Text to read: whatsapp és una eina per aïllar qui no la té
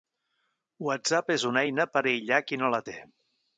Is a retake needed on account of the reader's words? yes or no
no